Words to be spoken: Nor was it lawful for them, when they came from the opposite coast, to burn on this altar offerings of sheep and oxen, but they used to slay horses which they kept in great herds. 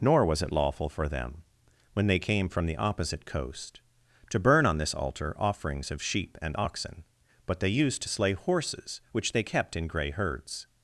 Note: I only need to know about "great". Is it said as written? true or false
false